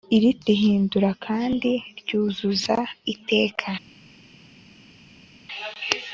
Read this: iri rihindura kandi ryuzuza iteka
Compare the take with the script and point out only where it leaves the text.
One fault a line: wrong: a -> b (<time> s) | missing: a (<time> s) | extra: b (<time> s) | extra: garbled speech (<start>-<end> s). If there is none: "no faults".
no faults